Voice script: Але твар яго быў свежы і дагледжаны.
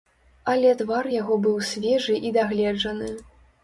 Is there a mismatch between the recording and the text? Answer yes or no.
no